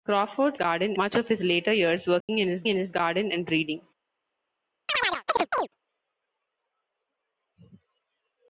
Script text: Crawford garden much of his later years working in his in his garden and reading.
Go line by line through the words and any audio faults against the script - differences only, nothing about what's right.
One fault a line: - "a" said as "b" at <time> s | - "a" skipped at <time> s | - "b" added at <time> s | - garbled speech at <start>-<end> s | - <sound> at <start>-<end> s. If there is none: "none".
- dropout at 2.2-2.3 s
- chirp at 4.9-5.7 s